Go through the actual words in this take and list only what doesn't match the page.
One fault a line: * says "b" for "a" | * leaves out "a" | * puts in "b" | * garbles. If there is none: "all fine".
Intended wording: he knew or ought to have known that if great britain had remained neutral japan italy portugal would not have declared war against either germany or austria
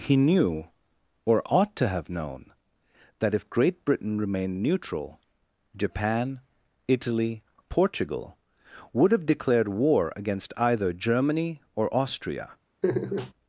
* leaves out "had"
* leaves out "not"